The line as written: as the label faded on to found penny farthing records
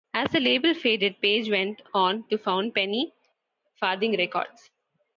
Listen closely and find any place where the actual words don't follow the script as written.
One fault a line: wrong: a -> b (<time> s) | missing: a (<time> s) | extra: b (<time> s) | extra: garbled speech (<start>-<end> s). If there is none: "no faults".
extra: page went (1.2 s)